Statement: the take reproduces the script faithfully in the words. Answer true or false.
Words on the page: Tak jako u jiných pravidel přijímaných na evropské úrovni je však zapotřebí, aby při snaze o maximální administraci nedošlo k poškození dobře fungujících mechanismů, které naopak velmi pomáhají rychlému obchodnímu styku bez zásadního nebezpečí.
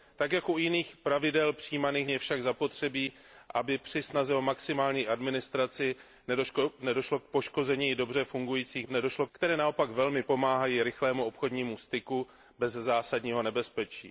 false